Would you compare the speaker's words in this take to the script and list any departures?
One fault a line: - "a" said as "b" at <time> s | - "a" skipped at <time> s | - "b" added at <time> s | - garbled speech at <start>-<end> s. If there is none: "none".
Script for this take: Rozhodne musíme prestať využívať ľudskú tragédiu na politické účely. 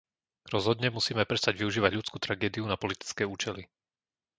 none